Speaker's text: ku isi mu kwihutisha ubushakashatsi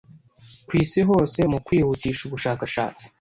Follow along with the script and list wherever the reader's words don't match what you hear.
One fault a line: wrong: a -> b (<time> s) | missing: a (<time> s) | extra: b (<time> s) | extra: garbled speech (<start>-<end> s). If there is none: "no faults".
extra: hose (1.1 s)